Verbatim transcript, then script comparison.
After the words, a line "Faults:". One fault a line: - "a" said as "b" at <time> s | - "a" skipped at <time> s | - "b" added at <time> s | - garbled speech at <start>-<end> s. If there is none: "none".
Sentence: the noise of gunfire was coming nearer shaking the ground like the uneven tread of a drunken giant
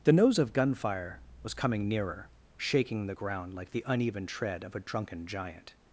the nose of gunfire was coming nearer shaking the ground like the uneven tread of a drunken giant
Faults:
- "noise" said as "nose" at 0.1 s